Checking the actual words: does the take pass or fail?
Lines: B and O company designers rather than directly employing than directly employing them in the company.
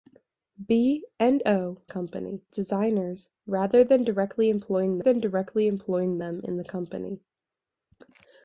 pass